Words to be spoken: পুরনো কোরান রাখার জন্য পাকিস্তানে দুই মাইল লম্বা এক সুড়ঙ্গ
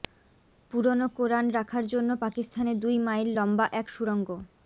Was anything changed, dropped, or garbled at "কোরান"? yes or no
no